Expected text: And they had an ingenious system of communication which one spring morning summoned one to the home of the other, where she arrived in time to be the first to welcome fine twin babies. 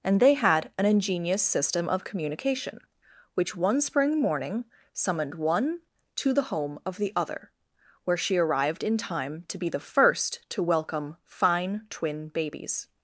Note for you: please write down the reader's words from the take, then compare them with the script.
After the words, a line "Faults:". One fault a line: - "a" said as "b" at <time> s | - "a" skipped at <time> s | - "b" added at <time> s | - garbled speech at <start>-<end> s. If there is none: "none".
And they had an ingenious system of communication which one spring morning summoned one to the home of the other, where she arrived in time to be the first to welcome fine twin babies.
Faults:
none